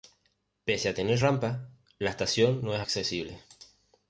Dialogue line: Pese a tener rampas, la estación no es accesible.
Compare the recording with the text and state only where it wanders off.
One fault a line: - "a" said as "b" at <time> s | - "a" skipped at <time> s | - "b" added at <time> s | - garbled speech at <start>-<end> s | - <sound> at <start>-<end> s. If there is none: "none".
none